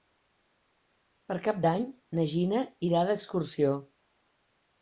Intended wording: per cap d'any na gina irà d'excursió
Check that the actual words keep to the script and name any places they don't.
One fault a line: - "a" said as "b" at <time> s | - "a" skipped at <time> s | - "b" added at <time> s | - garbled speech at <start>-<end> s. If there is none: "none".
none